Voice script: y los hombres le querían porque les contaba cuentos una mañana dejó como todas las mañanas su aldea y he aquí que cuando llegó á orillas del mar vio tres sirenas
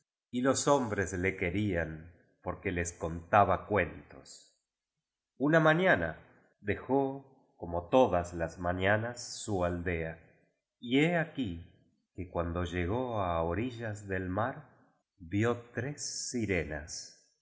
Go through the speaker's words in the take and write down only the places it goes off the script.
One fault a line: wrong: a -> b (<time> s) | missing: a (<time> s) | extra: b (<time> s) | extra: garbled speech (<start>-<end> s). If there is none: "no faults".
no faults